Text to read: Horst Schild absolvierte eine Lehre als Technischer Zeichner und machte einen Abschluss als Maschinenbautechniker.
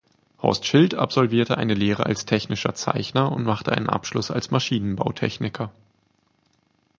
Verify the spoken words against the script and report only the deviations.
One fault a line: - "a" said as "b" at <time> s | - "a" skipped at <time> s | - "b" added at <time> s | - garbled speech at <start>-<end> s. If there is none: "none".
none